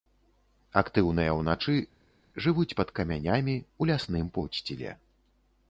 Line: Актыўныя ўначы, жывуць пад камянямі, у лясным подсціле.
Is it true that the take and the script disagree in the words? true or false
false